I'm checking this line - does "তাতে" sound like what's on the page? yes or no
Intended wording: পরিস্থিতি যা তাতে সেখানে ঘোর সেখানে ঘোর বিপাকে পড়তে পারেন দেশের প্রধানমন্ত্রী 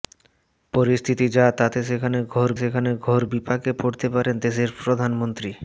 yes